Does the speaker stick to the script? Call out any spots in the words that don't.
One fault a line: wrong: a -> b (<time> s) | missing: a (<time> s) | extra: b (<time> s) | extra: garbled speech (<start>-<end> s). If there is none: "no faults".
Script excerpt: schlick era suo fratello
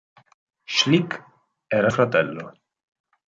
missing: suo (1.9 s)